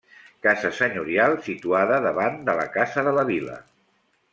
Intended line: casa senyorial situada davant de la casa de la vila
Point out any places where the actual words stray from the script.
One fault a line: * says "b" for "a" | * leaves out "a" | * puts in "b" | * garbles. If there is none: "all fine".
all fine